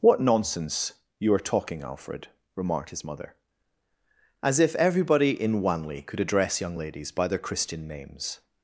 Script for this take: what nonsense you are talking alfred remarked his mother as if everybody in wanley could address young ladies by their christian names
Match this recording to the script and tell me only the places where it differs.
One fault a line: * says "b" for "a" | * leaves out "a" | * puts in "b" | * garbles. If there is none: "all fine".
all fine